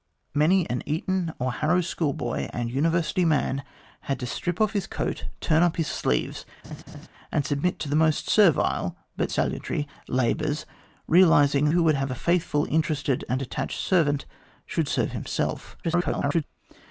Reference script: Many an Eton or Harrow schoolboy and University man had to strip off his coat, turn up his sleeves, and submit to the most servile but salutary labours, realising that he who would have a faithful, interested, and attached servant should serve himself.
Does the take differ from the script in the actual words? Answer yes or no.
yes